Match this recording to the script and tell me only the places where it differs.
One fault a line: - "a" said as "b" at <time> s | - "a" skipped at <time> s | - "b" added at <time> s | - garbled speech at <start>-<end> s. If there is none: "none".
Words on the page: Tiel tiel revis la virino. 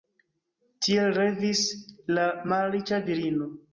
- "tiel" skipped at 1.1 s
- "malriĉa" added at 2.5 s